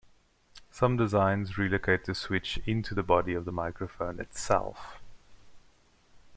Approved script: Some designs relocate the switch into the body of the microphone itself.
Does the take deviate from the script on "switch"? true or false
false